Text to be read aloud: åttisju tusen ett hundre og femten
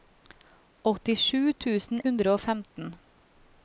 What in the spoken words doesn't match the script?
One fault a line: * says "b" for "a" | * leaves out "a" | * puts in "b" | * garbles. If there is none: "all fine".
* leaves out "ett"